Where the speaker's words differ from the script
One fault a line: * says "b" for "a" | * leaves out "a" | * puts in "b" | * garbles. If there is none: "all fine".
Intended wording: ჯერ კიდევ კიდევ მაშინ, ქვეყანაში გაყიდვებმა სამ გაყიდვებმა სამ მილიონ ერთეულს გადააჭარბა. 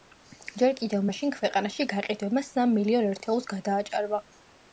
* leaves out "კიდევ"
* leaves out "გაყიდვებმა სამ"